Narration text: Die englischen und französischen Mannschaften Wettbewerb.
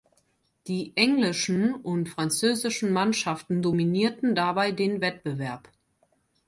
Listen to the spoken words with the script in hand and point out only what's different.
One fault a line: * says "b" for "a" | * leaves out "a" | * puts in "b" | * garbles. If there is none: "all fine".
* puts in "dominierten dabei den"